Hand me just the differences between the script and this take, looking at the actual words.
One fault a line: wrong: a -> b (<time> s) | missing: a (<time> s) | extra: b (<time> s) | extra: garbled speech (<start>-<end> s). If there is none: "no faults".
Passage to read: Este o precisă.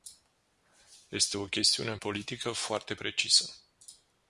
extra: chestiune politică foarte (1.4 s)